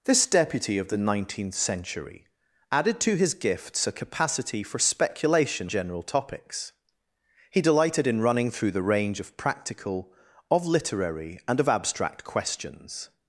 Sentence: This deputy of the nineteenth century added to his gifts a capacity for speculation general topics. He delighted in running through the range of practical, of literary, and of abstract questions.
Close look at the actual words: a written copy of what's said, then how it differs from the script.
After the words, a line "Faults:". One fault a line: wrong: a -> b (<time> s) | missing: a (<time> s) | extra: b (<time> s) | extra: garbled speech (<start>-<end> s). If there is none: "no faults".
This deputy of the nineteenth century added to his gifts a capacity for speculation general topics. He delighted in running through the range of practical, of literary, and of abstract questions.
Faults:
no faults